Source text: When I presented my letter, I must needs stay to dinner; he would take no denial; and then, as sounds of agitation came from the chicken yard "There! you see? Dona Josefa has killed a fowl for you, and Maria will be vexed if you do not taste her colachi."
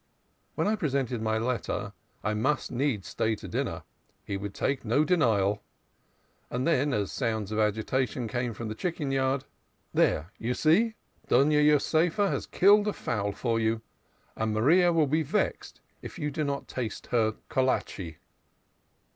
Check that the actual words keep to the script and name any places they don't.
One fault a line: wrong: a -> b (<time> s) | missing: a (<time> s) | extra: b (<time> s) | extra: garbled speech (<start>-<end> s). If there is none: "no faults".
no faults